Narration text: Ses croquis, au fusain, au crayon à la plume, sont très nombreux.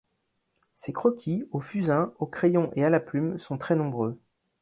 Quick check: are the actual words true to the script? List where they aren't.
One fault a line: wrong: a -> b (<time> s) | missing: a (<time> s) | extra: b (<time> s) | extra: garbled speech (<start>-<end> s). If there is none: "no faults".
extra: et (2.7 s)